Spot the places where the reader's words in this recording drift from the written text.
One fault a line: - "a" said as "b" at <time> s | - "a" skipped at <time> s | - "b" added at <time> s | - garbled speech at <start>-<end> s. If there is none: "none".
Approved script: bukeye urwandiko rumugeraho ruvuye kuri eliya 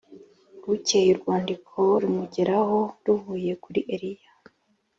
none